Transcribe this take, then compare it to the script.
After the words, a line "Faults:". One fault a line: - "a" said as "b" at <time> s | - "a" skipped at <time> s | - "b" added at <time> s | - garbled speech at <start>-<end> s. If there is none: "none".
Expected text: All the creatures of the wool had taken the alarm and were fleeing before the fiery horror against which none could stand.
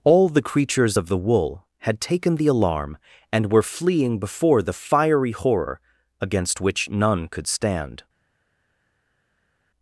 All the creatures of the wool had taken the alarm and were fleeing before the fiery horror against which none could stand.
Faults:
none